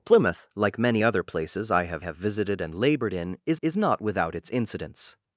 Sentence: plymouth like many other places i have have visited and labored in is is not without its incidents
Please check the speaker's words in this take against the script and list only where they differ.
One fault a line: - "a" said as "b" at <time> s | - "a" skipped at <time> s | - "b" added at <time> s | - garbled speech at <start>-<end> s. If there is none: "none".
none